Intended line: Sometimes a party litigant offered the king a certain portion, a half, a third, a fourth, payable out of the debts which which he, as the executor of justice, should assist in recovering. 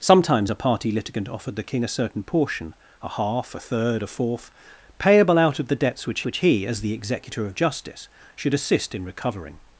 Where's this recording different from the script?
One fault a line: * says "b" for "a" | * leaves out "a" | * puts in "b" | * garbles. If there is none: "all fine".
all fine